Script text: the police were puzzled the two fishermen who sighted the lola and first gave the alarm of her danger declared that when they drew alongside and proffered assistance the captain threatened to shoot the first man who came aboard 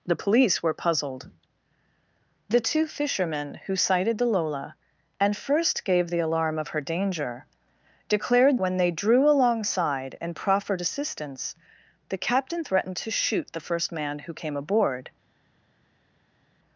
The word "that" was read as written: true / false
false